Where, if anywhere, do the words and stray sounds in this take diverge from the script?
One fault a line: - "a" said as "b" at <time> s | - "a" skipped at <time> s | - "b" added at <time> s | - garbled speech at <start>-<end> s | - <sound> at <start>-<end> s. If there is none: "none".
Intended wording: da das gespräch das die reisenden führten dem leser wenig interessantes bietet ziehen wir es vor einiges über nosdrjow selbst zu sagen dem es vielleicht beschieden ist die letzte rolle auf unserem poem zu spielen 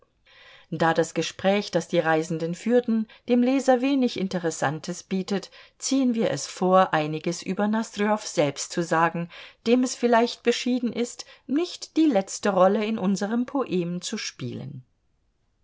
- "nicht" added at 11.5 s
- "auf" said as "in" at 12.8 s